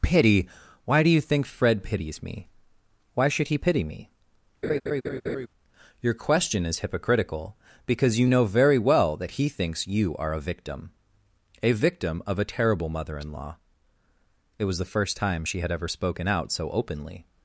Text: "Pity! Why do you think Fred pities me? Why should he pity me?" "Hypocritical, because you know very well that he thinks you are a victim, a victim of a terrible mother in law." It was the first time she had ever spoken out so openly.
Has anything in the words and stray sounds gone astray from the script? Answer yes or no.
yes